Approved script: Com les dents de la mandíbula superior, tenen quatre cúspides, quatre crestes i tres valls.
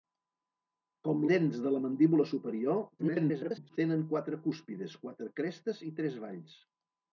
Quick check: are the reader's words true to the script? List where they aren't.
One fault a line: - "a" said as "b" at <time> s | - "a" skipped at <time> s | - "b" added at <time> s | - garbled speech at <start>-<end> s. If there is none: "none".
- "les" skipped at 1.2 s
- garbled speech at 3.0-3.8 s